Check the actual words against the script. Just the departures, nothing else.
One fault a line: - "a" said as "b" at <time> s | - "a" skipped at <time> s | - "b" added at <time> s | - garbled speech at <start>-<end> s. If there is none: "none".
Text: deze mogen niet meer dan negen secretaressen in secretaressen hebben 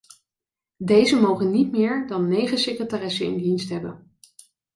- "secretaressen" said as "dienst" at 3.4 s